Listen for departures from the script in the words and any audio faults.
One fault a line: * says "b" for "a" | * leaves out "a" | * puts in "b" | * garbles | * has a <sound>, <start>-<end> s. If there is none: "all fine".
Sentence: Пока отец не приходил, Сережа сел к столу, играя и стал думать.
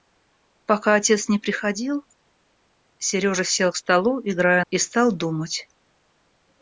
all fine